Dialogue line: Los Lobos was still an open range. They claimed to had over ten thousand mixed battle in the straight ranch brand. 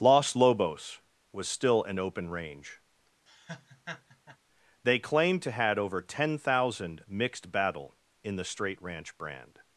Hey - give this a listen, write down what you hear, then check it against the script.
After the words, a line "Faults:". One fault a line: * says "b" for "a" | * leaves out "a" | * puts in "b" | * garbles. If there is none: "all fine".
Los Lobos was still an open range. They claimed to had over ten thousand mixed battle in the straight ranch brand.
Faults:
all fine